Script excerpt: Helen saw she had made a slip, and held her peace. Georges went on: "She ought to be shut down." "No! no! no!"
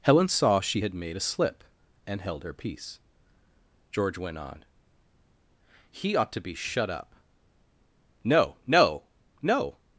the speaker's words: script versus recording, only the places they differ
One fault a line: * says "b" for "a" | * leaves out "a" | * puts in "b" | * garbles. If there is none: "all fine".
* says "George" for "Georges"
* says "He" for "She"
* says "up" for "down"